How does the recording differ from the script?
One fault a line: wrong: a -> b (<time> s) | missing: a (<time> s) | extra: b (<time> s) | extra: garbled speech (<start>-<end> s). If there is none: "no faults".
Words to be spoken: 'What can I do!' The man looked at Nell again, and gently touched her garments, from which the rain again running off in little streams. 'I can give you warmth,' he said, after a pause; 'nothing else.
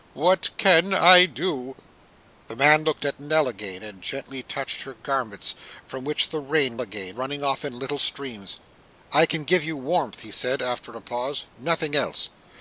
no faults